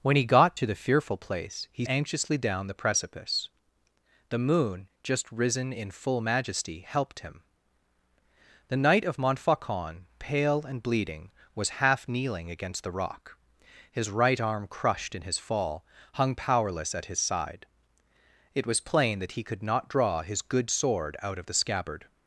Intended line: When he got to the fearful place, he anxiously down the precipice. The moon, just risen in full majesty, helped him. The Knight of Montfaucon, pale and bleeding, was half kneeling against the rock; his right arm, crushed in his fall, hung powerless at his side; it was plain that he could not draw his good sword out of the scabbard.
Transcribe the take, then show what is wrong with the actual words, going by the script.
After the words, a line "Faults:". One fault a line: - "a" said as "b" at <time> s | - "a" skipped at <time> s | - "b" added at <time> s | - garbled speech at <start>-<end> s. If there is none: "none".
When he got to the fearful place, he anxiously down the precipice. The moon, just risen in full majesty, helped him. The Knight of Montfaucon, pale and bleeding, was half kneeling against the rock; his right arm, crushed in his fall, hung powerless at his side; it was plain that he could not draw his good sword out of the scabbard.
Faults:
none